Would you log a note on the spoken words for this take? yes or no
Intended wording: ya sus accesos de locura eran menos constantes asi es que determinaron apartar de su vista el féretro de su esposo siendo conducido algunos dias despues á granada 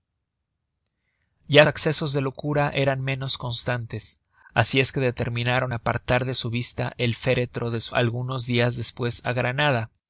yes